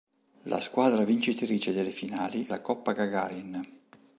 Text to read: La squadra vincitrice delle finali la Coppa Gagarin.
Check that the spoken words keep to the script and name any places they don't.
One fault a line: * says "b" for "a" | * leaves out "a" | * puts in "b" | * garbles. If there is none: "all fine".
all fine